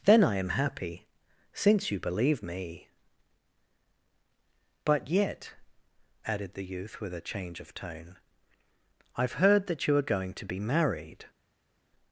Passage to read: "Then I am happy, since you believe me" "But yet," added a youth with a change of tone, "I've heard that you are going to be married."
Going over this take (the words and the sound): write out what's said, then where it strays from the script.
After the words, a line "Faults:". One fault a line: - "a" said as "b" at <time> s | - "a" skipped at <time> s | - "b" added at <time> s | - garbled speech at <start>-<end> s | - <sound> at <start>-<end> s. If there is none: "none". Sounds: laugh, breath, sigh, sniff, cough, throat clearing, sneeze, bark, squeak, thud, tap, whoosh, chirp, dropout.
"Then I am happy, since you believe me" "But yet," added the youth with a change of tone, "I've heard that you are going to be married."
Faults:
- "a" said as "the" at 6.5 s